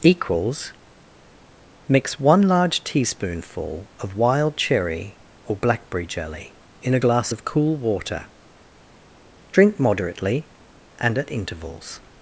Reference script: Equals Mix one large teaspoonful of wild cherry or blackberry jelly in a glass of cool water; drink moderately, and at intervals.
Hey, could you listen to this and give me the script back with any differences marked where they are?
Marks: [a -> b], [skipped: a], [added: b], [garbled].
Equals Mix one large teaspoonful of wild cherry or blackberry jelly in a glass of cool water; drink moderately, and at intervals.